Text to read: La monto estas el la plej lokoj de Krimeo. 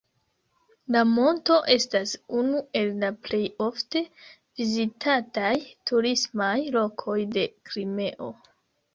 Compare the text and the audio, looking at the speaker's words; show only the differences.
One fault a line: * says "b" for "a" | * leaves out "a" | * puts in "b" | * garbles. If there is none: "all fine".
* puts in "unu"
* puts in "ofte vizitataj turismaj"